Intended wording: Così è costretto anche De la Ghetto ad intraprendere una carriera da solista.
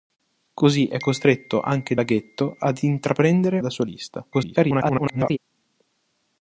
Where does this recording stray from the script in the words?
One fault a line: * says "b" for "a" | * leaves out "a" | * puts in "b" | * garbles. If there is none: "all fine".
* leaves out "De"
* leaves out "una carriera"
* garbles